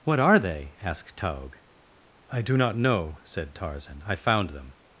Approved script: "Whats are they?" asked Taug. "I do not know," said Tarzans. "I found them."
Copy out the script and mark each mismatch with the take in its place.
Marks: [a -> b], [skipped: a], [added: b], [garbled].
["Whats -> What] are they?" asked Taug. "I do not know," said [Tarzans. -> Tarzan] "I found them."